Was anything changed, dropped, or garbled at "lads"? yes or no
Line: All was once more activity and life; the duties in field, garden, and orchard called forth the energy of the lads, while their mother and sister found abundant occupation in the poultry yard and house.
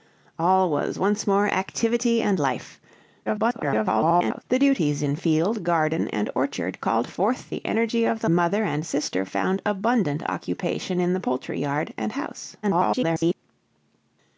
yes